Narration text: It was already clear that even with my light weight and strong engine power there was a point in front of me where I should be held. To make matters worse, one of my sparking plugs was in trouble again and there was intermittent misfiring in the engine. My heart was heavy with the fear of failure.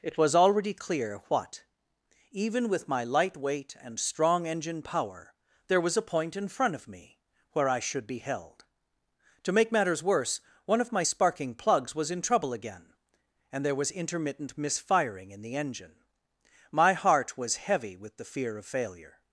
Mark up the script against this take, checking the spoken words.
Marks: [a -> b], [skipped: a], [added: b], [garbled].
It was already clear [that -> what] even with my light weight and strong engine power there was a point in front of me where I should be held. To make matters worse, one of my sparking plugs was in trouble again and there was intermittent misfiring in the engine. My heart was heavy with the fear of failure.